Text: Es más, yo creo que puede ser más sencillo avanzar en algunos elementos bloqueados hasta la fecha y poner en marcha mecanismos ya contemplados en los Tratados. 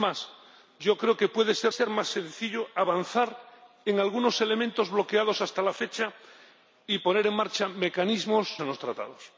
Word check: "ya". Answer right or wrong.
wrong